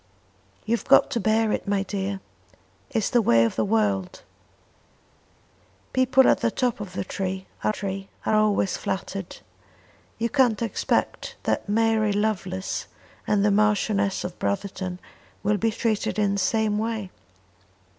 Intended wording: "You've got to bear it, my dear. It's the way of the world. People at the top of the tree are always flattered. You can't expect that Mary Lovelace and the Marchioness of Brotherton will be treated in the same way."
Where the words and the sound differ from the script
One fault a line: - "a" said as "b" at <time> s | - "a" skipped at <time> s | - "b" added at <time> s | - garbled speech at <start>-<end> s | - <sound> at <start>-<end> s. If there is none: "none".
- "tree are" added at 7.7 s